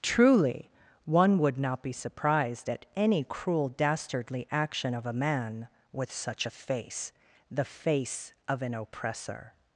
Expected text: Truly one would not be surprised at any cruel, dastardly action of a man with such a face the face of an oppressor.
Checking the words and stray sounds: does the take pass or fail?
pass